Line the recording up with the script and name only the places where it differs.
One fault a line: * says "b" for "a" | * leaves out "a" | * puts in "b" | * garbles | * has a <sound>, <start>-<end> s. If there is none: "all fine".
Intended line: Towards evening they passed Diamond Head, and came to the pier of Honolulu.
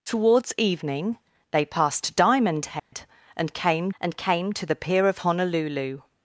* has a dropout, 2.8-2.9 s
* puts in "and came"